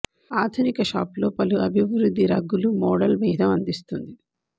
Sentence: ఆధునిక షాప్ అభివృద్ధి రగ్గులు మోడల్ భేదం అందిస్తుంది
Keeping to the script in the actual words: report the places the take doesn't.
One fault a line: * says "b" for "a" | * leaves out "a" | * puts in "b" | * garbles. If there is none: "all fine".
* puts in "లో పలు"